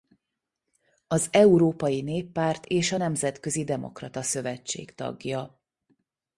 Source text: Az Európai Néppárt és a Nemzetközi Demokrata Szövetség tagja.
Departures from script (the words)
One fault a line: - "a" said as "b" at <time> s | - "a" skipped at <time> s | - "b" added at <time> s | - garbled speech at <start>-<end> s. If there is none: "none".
none